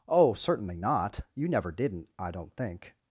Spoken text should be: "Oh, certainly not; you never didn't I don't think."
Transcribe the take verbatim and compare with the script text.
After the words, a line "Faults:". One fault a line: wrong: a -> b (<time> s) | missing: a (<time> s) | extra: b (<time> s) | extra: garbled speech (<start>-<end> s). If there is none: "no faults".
"Oh, certainly not; you never didn't I don't think."
Faults:
no faults